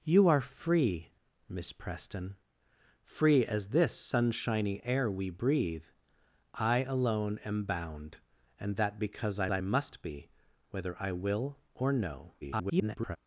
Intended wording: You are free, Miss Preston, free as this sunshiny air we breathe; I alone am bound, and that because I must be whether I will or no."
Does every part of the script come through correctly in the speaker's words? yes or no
no